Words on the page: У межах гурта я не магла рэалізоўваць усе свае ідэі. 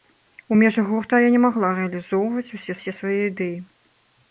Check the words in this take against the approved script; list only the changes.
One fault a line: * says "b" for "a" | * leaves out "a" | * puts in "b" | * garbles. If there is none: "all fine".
* puts in "усе"